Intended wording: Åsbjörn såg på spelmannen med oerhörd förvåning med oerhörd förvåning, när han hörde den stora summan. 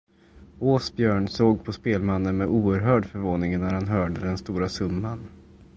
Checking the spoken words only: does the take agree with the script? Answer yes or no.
no